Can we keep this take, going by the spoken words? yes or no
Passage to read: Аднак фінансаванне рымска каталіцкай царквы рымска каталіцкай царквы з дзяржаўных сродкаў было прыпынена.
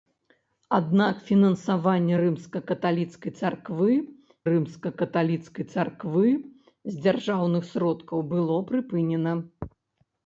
yes